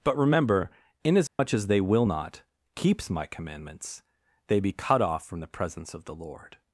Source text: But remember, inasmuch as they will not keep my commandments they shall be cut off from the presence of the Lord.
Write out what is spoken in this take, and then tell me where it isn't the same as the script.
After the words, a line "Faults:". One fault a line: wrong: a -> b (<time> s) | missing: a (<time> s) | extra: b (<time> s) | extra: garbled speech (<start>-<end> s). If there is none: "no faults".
But remember, inasmuch as they will not keeps my commandments they be cut off from the presence of the Lord.
Faults:
wrong: keep -> keeps (2.8 s)
missing: shall (4.6 s)